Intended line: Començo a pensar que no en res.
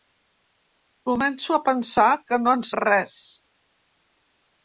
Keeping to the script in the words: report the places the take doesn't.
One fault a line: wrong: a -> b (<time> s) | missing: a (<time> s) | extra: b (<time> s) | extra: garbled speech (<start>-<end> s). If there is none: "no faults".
no faults